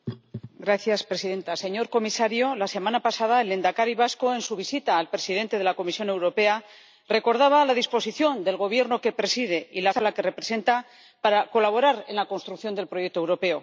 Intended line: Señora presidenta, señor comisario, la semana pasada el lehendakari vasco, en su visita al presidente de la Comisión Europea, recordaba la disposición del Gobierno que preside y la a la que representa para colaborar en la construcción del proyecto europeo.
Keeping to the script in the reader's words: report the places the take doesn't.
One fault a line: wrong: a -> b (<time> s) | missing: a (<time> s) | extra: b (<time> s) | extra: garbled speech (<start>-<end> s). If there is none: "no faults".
no faults